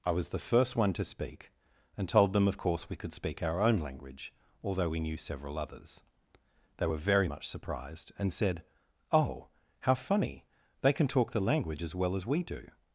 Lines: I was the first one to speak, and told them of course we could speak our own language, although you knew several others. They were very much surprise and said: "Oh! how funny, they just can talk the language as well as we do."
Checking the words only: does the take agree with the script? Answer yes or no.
no